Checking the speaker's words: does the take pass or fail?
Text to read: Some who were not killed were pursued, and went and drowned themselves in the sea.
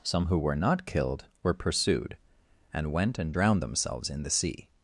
pass